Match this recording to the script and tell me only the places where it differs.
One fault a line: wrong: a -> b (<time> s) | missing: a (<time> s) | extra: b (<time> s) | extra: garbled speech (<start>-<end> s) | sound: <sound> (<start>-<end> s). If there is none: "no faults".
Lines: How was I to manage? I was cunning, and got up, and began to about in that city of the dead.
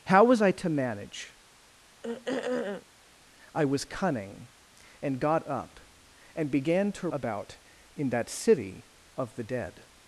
sound: throat clearing (2.0-2.9 s)